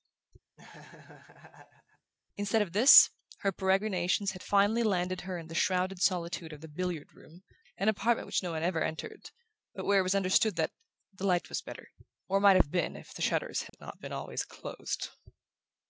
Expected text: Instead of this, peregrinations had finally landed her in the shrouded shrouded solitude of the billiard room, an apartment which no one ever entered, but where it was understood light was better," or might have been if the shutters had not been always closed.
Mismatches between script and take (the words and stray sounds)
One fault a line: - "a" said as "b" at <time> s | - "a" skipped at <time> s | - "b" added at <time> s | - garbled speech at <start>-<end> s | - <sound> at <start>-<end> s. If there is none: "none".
- laugh at 0.6-2.1 s
- "her" added at 3.4 s
- "shrouded" skipped at 6.0 s
- "that the" added at 10.6 s
- dropout at 13.7-13.7 s